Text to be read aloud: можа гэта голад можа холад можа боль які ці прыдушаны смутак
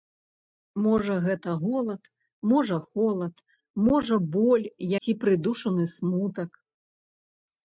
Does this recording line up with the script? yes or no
no